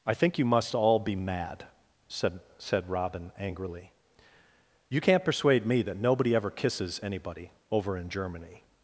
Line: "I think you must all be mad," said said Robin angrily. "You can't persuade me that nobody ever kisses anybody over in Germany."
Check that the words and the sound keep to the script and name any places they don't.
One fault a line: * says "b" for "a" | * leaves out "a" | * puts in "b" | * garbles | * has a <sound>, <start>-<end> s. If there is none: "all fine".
all fine